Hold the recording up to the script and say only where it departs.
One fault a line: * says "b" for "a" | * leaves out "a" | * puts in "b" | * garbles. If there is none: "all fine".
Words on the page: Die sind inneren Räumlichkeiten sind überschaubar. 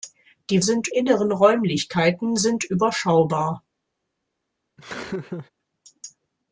all fine